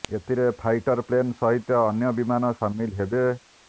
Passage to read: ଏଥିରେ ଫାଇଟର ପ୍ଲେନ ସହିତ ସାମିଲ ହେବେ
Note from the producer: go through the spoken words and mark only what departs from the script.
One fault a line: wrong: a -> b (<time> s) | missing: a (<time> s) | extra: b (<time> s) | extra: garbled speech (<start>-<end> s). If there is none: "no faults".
extra: ଅନ୍ୟ ବିମାନ (1.8 s)